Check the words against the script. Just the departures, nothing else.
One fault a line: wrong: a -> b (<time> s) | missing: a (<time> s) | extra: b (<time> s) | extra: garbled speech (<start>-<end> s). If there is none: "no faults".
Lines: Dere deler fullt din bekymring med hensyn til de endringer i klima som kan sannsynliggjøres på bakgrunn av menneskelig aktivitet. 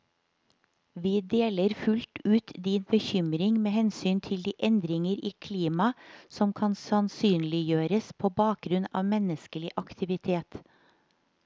wrong: Dere -> Vi (0.9 s)
extra: ut (2.2 s)